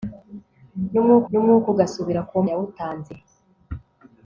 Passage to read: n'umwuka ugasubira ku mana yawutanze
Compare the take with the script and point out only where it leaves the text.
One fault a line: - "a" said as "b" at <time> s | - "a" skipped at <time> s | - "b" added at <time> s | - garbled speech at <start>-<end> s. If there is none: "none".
- "n'umwuka" added at 1.3 s
- "mana" skipped at 2.3 s